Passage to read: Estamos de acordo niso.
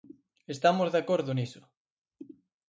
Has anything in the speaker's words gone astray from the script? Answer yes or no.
no